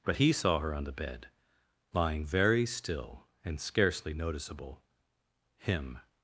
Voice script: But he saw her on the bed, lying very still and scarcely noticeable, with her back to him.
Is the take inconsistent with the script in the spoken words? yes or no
yes